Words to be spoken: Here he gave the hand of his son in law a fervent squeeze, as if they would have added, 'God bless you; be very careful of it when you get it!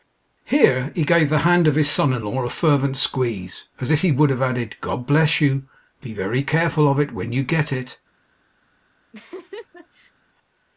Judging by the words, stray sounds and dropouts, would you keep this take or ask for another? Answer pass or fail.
fail